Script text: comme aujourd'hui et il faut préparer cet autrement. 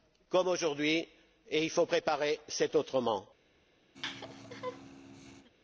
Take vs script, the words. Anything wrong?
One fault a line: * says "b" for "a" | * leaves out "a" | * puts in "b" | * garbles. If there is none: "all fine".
all fine